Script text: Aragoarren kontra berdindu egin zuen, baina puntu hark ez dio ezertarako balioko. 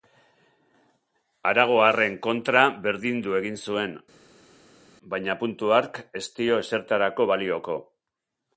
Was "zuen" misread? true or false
false